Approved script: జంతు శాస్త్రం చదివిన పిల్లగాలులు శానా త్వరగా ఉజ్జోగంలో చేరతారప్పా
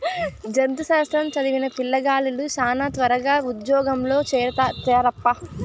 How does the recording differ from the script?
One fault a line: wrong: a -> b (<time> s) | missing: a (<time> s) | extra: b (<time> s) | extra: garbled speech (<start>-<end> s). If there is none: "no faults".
no faults